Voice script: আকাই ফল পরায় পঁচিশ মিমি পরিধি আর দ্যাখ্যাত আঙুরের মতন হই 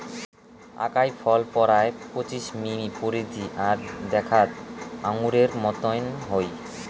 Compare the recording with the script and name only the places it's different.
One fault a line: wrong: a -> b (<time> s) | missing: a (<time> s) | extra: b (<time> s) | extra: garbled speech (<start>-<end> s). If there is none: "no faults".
no faults